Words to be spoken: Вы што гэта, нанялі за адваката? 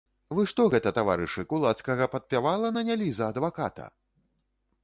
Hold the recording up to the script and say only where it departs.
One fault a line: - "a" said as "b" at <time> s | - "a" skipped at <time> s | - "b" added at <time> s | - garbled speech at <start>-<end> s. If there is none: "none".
- "таварышы кулацкага падпявала" added at 1.0 s